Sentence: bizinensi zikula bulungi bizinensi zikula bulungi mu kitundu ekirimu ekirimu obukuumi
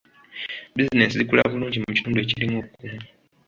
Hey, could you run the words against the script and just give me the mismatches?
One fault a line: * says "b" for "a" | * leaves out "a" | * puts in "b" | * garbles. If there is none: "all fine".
* leaves out "bizinensi zikula bulungi"
* leaves out "ekirimu"